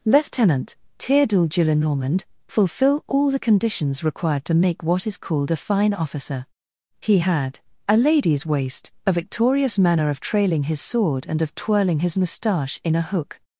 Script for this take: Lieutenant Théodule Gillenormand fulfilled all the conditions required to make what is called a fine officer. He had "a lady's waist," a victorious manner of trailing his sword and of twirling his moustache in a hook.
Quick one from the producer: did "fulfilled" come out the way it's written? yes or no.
no